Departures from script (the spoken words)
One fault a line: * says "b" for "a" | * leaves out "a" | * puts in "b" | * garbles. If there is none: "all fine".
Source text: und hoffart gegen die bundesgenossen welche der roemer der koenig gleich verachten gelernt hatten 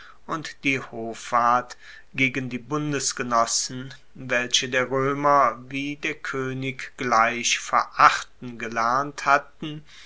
* puts in "die"
* puts in "wie"